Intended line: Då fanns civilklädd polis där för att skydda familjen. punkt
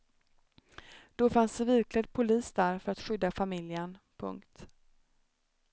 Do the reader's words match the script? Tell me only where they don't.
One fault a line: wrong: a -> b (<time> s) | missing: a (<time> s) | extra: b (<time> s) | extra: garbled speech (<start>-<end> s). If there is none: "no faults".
no faults